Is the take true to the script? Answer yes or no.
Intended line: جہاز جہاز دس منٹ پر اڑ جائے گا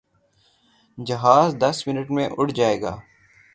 no